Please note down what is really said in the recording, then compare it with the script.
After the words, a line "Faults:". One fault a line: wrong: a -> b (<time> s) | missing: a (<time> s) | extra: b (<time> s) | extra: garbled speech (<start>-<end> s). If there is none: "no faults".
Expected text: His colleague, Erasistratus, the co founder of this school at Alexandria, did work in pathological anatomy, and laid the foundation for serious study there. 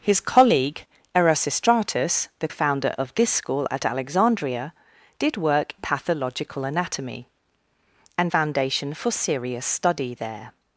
His colleague, Erasistratus, the founder of this school at Alexandria, did work pathological anatomy, and foundation for serious study there.
Faults:
missing: co (2.5 s)
missing: in (5.7 s)
missing: laid the (8.3 s)